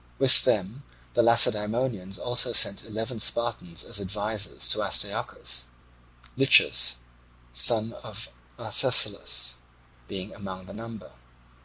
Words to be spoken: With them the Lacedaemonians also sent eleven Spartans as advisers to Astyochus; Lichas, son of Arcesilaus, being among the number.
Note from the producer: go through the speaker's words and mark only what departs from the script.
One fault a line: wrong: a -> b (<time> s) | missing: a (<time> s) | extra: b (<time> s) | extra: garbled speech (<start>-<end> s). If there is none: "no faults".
no faults